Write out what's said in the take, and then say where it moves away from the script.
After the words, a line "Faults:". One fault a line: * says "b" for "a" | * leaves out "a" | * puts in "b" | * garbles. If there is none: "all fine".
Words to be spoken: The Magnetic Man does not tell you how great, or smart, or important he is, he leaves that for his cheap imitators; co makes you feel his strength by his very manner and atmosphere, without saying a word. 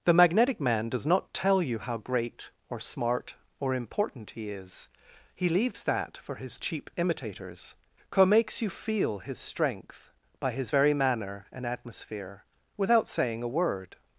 The Magnetic Man does not tell you how great, or smart, or important he is, he leaves that for his cheap imitators; co makes you feel his strength by his very manner and atmosphere, without saying a word.
Faults:
all fine